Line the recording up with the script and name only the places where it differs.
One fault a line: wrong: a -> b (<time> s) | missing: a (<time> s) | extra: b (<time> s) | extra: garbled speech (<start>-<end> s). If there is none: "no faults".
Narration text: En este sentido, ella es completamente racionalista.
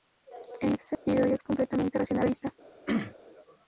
no faults